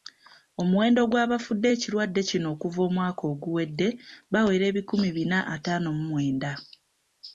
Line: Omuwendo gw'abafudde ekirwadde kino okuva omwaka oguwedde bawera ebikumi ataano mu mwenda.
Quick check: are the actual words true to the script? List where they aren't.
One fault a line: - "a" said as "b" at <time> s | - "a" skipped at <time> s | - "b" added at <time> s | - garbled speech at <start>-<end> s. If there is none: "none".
- "bina" added at 5.2 s